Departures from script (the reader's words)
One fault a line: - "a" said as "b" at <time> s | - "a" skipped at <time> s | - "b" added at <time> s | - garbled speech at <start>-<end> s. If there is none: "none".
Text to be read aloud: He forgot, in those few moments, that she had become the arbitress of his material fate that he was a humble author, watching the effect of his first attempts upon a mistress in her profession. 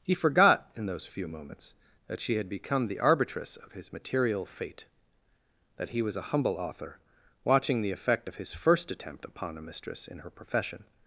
- "attempts" said as "attempt" at 8.9 s